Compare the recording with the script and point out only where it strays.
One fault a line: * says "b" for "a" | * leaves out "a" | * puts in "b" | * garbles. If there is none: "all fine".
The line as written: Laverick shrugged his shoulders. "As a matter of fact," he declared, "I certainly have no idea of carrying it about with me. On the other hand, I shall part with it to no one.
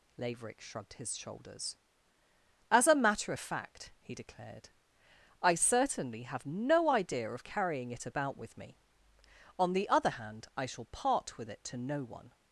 all fine